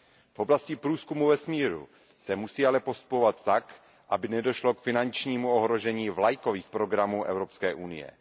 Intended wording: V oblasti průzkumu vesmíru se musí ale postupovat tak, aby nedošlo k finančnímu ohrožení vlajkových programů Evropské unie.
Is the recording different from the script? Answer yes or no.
no